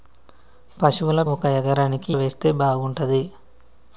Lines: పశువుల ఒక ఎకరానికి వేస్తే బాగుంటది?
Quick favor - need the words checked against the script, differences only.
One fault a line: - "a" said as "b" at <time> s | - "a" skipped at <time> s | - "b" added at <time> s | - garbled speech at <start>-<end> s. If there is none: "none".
none